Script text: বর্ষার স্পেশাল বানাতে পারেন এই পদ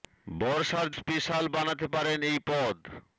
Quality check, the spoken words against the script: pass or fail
pass